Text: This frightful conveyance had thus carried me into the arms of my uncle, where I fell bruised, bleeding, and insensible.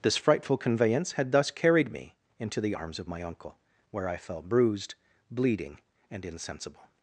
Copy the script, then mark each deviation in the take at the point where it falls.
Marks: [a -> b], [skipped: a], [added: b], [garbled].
This frightful conveyance had thus carried me into the arms of my uncle, where I fell bruised, bleeding, and insensible.